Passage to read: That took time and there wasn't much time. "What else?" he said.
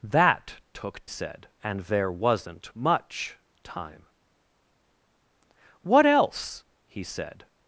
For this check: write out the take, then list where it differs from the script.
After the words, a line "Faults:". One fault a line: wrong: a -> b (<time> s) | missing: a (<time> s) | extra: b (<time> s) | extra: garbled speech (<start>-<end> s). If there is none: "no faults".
That took said and there wasn't much time. "What else?" he said.
Faults:
wrong: time -> said (1.1 s)